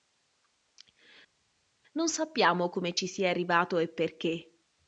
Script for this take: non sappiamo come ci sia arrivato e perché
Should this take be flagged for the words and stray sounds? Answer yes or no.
no